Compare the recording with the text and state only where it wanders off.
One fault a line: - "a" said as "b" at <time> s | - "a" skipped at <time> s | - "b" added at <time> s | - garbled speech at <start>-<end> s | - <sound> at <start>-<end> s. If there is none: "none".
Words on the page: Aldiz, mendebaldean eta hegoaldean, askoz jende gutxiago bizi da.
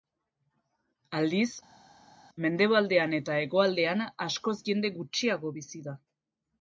none